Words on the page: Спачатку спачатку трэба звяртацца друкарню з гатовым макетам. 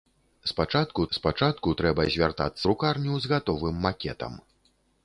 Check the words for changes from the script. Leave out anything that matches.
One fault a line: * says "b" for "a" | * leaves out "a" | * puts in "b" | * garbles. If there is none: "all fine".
all fine